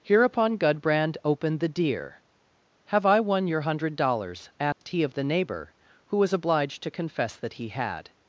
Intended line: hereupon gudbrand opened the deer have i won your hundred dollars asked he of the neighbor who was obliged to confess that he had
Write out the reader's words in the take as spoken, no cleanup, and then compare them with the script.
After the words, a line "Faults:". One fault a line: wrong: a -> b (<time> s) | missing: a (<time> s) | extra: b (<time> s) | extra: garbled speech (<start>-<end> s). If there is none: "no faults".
hereupon gudbrand opened the deer have i won your hundred dollars asked he of the neighbor who was obliged to confess that he had
Faults:
no faults